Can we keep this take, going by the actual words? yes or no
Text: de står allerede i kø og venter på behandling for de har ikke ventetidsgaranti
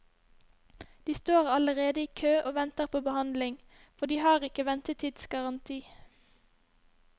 yes